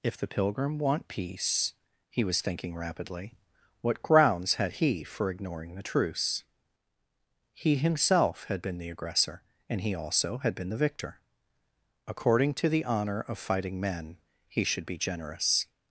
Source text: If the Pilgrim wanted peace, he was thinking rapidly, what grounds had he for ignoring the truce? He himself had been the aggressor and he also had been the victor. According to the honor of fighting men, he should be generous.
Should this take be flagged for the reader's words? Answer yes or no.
yes